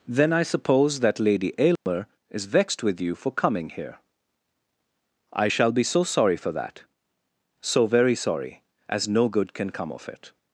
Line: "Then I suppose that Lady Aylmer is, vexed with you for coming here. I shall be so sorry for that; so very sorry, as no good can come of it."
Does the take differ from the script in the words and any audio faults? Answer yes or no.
yes